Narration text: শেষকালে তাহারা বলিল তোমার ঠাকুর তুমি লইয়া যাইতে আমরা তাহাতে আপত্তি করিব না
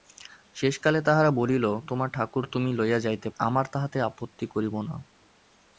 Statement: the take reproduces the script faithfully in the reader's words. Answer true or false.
true